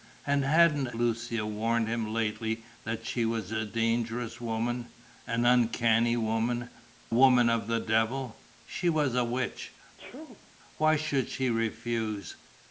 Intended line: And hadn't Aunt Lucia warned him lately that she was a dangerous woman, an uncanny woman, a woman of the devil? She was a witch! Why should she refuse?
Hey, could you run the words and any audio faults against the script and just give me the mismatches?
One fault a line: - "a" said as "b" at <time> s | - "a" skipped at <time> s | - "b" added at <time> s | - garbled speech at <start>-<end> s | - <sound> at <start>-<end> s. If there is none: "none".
- "Aunt" skipped at 0.9 s
- "a" skipped at 6.7 s
- sneeze at 10.0-10.5 s